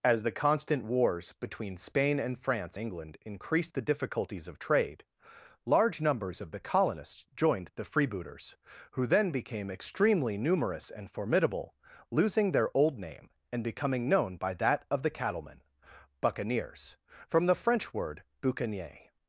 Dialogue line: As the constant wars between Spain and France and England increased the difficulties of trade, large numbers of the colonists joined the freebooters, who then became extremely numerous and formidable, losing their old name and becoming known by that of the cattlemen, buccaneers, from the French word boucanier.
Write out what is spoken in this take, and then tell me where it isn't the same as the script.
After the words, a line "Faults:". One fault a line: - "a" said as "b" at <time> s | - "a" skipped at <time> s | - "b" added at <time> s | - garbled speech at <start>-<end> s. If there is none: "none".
As the constant wars between Spain and France England increased the difficulties of trade, large numbers of the colonists joined the freebooters, who then became extremely numerous and formidable, losing their old name and becoming known by that of the cattlemen, buccaneers, from the French word boucanier.
Faults:
- "and" skipped at 2.8 s